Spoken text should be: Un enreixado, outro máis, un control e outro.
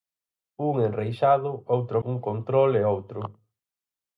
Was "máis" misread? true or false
true